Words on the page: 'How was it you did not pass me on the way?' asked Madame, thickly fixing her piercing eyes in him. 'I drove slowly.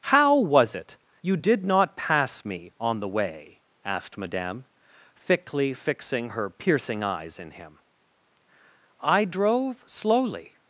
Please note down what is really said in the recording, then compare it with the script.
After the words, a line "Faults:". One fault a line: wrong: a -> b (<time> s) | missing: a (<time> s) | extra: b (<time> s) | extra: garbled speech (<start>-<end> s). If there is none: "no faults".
'How was it you did not pass me on the way?' asked Madame, thickly fixing her piercing eyes in him. 'I drove slowly.
Faults:
no faults